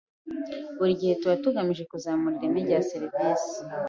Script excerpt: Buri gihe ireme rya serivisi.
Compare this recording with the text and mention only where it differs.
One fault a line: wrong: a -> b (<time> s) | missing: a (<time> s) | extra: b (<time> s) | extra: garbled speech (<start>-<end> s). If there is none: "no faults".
extra: tuba tugamije kuzamura (1.2 s)